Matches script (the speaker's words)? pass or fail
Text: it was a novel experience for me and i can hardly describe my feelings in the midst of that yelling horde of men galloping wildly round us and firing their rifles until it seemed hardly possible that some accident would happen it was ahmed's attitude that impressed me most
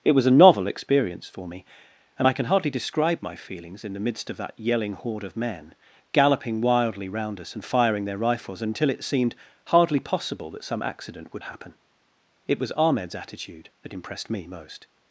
pass